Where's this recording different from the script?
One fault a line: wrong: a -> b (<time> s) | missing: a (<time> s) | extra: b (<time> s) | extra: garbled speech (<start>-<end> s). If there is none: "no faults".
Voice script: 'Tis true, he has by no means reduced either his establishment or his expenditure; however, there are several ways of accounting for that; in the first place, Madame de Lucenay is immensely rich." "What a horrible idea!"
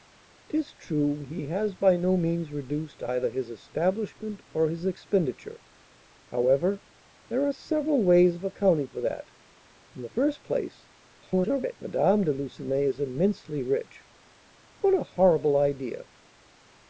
extra: garbled speech (11.2-11.8 s)